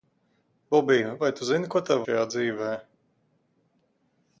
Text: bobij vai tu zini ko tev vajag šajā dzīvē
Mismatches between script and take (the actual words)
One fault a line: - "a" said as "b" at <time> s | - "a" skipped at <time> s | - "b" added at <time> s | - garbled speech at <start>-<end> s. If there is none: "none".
- "vajag" skipped at 2.0 s